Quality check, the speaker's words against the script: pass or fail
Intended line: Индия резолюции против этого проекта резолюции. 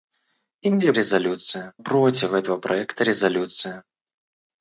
pass